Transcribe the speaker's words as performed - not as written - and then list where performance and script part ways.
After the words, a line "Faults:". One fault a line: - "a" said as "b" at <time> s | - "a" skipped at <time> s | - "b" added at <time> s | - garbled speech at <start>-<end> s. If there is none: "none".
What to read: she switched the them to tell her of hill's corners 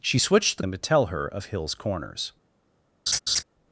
she switched the them to tell her of hill's corners
Faults:
none